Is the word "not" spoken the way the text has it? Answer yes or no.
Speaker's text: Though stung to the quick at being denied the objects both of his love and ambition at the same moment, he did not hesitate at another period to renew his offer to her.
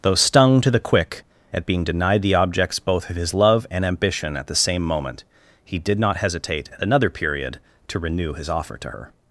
yes